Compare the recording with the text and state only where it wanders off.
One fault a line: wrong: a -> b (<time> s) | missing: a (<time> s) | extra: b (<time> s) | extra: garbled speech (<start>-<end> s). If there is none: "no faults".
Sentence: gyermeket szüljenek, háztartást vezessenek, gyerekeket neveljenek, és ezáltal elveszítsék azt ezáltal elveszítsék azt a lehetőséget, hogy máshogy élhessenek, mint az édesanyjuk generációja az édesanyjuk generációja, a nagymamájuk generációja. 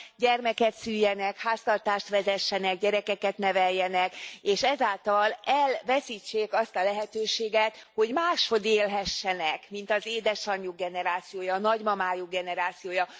missing: ezáltal elveszítsék azt (6.8 s)
missing: az édesanyjuk generációja (11.5 s)